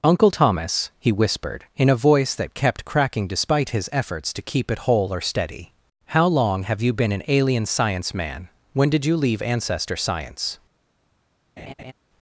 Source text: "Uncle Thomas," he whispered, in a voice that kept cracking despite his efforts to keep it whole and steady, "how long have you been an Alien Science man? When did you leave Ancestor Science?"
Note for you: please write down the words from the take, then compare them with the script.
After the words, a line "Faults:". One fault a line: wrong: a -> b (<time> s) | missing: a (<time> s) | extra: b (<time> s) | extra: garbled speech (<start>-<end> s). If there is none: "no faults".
"Uncle Thomas," he whispered, in a voice that kept cracking despite his efforts to keep it whole or steady, "how long have you been an Alien Science man? When did you leave Ancestor Science?"
Faults:
wrong: and -> or (5.1 s)